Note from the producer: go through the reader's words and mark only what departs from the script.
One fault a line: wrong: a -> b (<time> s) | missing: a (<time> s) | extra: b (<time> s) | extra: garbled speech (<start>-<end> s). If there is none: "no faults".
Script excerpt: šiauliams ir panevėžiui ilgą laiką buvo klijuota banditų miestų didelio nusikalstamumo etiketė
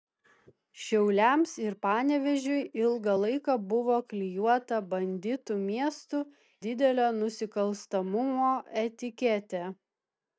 no faults